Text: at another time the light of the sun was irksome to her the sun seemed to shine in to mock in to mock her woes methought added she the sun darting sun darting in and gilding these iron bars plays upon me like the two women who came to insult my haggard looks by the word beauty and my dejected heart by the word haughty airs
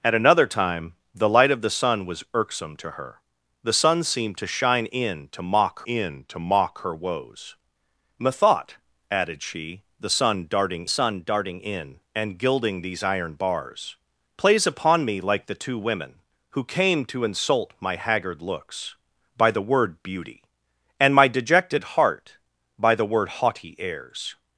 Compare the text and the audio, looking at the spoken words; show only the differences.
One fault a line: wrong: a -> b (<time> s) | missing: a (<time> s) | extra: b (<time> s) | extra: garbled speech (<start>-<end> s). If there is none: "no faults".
no faults